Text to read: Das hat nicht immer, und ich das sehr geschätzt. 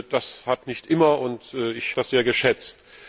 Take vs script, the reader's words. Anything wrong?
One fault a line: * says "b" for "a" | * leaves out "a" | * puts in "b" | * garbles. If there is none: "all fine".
all fine